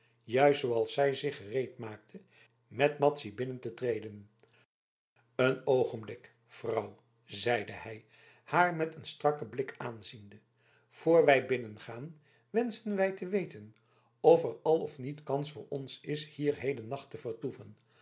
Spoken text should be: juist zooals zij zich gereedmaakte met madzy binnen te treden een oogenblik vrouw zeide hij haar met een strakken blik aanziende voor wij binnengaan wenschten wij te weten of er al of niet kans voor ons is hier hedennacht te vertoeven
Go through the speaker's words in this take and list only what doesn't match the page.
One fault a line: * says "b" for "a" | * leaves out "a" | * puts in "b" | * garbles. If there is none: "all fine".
all fine